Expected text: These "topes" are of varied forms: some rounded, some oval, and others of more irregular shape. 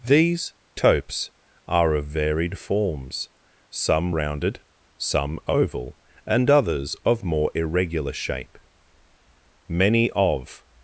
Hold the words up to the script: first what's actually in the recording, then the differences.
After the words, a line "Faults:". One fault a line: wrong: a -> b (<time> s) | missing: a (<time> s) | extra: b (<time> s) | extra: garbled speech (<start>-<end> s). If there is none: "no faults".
These "topes" are of varied forms: some rounded, some oval, and others of more irregular shape. Many of
Faults:
extra: Many of (9.7 s)